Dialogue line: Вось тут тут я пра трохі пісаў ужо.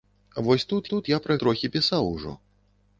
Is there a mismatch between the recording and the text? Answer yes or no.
no